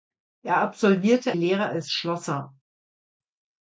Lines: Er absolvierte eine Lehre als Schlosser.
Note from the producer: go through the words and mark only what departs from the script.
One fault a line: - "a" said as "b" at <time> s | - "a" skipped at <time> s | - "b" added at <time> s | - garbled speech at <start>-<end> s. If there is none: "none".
- "eine" skipped at 1.4 s